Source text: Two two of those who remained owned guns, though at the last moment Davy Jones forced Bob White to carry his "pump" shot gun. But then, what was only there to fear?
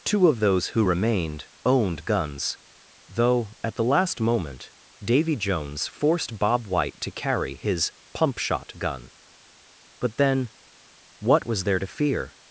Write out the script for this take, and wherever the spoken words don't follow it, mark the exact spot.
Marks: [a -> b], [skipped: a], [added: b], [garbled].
Two [skipped: two] of those who remained owned guns, though at the last moment Davy Jones forced Bob White to carry his "pump" shot gun. But then, what was [skipped: only] there to fear?